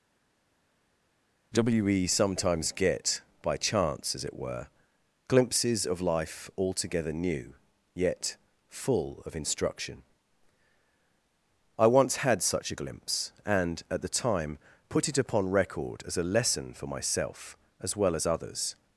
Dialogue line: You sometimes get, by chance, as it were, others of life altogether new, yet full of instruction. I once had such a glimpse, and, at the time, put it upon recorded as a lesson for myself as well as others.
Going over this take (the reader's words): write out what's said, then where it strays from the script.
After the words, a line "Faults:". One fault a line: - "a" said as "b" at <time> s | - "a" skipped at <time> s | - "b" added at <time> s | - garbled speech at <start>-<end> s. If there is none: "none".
WE sometimes get, by chance, as it were, glimpses of life altogether new, yet full of instruction. I once had such a glimpse, and, at the time, put it upon record as a lesson for myself as well as others.
Faults:
- "You" said as "WE" at 1.5 s
- "others" said as "glimpses" at 5.3 s
- "recorded" said as "record" at 15.5 s